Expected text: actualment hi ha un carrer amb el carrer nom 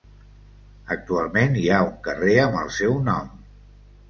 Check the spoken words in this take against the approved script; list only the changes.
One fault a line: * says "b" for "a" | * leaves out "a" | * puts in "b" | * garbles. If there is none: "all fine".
* says "seu" for "carrer"